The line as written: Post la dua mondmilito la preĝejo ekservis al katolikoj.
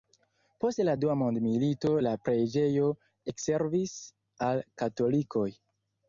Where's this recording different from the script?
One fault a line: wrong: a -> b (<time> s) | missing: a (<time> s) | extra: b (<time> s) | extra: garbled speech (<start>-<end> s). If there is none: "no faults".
no faults